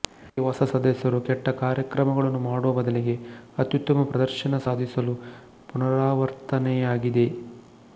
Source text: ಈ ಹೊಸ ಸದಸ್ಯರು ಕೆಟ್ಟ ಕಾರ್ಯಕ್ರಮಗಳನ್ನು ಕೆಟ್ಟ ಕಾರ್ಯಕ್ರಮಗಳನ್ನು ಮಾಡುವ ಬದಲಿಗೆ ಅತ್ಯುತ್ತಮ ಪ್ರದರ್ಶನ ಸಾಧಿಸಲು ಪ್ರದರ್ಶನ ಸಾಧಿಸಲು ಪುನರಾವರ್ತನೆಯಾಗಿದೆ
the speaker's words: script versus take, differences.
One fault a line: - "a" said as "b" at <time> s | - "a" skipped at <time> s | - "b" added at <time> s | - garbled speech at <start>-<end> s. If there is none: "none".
- "ಕೆಟ್ಟ ಕಾರ್ಯಕ್ರಮಗಳನ್ನು" skipped at 2.4 s
- "ಪ್ರದರ್ಶನ ಸಾಧಿಸಲು" skipped at 5.1 s